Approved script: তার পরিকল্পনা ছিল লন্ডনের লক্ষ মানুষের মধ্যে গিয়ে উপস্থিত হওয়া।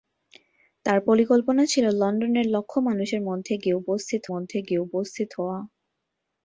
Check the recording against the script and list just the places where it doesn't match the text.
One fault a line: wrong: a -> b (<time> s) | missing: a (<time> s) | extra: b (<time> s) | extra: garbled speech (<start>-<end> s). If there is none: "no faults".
extra: মধ্যে গিয়ে উপস্থিত (4.3 s)